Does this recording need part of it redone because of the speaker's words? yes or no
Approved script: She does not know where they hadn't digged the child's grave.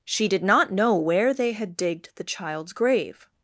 yes